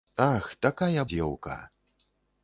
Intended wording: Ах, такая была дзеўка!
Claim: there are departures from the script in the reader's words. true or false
true